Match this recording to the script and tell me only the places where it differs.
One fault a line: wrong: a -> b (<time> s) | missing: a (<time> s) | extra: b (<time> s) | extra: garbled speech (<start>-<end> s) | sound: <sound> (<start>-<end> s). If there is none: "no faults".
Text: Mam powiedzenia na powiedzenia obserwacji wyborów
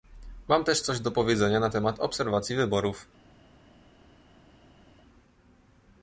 extra: też coś do (0.6 s)
wrong: powiedzenia -> temat (1.7 s)